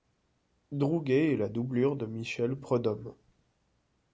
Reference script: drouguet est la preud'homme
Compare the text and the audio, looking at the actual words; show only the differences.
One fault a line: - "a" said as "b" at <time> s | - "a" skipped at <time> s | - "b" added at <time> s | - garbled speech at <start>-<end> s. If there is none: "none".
- "doublure de michel" added at 1.5 s